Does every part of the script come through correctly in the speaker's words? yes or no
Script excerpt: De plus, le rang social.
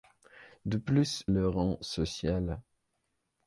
yes